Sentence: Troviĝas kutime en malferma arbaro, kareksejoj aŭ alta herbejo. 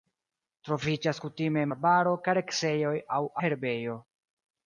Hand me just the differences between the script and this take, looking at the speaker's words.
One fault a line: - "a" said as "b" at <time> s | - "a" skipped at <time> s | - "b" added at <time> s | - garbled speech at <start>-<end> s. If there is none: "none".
- "malferma" skipped at 1.7 s
- "alta" skipped at 3.2 s